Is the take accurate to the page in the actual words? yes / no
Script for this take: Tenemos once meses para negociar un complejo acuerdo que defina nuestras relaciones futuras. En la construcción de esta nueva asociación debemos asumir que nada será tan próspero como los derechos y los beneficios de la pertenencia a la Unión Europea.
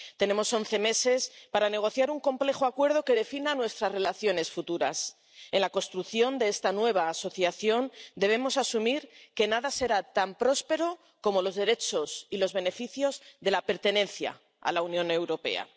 yes